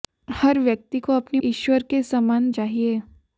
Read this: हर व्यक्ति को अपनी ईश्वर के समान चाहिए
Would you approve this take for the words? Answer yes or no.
yes